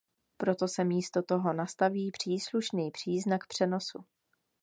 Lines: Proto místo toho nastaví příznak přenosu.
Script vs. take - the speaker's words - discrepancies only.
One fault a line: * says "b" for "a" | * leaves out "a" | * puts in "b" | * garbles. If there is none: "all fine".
* puts in "se"
* puts in "příslušný"